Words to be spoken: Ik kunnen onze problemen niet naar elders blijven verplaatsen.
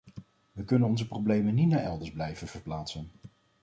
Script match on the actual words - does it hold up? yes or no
no